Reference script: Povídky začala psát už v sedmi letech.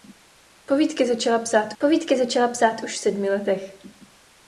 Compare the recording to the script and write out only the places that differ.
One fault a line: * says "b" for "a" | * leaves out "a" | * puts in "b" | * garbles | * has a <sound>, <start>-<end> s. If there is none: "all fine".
* puts in "povídky začala psát"